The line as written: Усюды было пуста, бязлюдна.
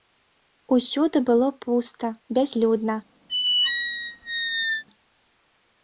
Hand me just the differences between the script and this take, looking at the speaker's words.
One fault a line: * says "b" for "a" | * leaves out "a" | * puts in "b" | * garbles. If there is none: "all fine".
all fine